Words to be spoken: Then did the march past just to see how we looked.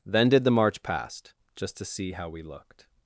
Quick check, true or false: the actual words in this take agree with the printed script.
true